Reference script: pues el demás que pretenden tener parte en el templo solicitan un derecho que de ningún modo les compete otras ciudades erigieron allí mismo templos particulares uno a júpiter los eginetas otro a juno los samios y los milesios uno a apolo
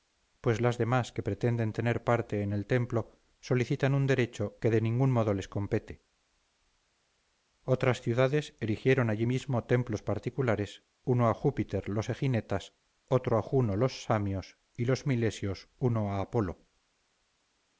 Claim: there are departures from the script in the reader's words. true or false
true